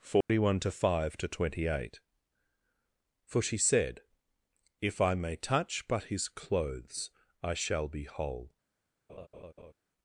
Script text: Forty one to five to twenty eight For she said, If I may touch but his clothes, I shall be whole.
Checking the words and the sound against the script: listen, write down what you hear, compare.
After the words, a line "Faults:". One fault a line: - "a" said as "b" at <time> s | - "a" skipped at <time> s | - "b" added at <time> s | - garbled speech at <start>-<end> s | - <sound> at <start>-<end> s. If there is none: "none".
Forty one to five to twenty eight For she said, If I may touch but his clothes, I shall be whole.
Faults:
- dropout at 0.2-0.3 s
- laugh at 9.1-9.7 s